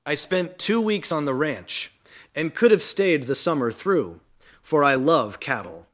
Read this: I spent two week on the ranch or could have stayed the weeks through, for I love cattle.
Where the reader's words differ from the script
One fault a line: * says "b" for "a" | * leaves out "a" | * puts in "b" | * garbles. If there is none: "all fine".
* says "weeks" for "week"
* says "and" for "or"
* says "summer" for "weeks"